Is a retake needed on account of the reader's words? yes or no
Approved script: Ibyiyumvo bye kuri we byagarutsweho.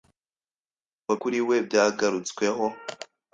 yes